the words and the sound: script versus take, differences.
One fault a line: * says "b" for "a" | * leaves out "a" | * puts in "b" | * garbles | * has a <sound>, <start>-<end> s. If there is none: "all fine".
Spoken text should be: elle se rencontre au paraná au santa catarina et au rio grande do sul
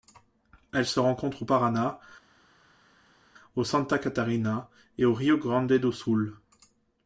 all fine